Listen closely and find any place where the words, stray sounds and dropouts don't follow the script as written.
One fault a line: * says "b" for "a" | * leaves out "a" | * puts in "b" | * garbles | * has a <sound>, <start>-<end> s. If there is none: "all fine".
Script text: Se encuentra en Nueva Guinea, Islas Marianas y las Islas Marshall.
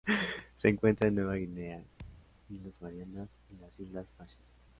* has a thud, 2.0-2.4 s